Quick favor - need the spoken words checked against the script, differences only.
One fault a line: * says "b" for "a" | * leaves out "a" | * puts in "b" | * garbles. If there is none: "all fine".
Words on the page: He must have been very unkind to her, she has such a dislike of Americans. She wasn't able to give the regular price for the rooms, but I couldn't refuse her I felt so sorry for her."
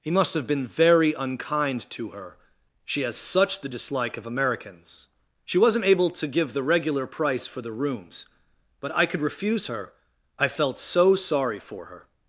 * says "the" for "a"
* says "could" for "couldn't"